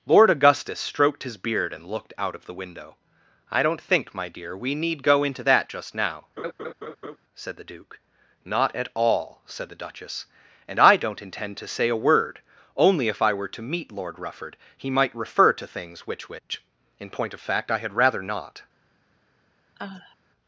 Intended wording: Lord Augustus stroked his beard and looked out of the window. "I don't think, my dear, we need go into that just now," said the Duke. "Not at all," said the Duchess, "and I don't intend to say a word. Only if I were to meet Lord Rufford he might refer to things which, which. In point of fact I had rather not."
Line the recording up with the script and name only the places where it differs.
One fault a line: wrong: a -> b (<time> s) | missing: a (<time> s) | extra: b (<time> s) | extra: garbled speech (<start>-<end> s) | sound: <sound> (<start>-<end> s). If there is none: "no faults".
sound: laugh (6.4-7.2 s)
sound: sigh (19.8-20.2 s)